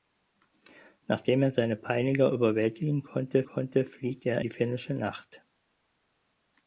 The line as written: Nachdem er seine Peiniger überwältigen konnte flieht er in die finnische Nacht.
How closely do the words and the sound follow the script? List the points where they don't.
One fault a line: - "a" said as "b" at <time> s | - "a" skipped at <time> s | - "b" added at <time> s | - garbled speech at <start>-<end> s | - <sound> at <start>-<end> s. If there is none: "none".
- "konnte" added at 3.4 s
- "in" skipped at 4.4 s